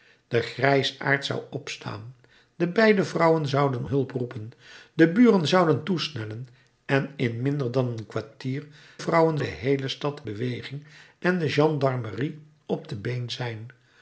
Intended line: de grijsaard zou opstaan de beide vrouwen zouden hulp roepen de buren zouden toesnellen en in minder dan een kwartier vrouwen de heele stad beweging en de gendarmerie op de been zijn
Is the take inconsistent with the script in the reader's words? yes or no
no